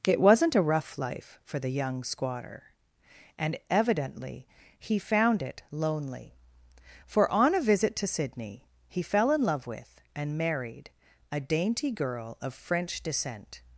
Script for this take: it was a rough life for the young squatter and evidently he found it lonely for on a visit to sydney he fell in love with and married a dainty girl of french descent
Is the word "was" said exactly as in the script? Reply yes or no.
no